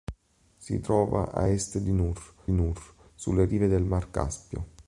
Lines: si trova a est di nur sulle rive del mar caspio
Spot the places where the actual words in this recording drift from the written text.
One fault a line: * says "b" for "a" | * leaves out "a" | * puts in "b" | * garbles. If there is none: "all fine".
* puts in "nur"